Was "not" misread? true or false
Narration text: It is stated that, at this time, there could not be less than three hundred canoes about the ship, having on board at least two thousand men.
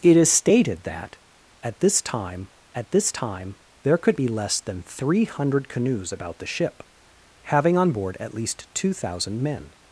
true